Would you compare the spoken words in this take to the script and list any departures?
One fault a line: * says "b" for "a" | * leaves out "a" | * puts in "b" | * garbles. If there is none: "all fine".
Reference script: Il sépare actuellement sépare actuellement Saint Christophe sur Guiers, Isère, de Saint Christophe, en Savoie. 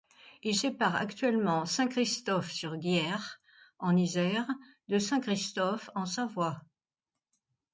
* leaves out "sépare actuellement"
* puts in "en"